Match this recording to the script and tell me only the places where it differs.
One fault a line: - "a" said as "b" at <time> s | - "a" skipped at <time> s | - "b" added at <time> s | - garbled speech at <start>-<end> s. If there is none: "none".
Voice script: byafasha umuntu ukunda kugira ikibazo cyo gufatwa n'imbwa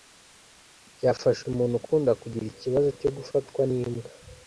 none